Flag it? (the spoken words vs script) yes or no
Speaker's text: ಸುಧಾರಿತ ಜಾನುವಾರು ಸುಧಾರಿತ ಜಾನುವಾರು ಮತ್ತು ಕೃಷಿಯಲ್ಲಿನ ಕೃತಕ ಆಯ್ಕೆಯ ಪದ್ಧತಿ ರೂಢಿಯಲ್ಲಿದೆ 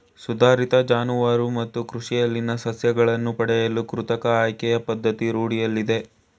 yes